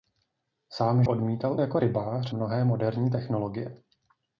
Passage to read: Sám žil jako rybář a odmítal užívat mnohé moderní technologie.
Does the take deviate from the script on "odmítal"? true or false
true